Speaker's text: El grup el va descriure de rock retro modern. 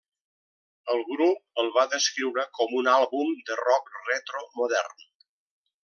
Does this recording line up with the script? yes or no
no